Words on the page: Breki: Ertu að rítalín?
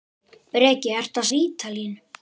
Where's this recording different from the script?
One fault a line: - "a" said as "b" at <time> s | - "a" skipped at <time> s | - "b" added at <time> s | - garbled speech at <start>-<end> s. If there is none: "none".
none